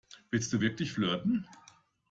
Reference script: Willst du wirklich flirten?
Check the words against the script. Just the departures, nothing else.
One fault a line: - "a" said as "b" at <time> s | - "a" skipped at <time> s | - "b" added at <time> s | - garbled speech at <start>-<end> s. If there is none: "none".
none